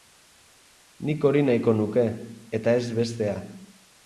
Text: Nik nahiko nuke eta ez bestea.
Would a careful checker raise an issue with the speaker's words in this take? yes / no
yes